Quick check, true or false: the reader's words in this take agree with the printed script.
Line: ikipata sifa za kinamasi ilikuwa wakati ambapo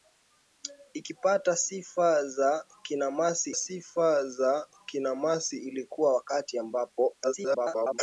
false